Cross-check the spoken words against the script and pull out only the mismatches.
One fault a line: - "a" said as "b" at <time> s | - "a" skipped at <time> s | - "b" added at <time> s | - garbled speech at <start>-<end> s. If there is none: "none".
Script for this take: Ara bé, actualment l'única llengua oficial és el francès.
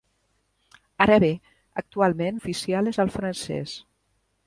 - "l'única llengua" skipped at 2.4 s